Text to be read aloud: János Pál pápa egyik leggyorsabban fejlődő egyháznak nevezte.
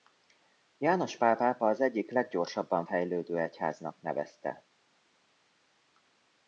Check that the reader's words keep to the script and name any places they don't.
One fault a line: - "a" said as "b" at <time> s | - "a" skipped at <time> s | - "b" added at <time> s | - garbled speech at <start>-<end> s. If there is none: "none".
- "az" added at 1.7 s